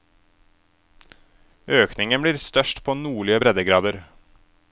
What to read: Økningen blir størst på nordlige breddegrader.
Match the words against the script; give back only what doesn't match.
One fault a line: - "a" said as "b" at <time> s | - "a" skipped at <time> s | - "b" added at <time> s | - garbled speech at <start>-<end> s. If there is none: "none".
none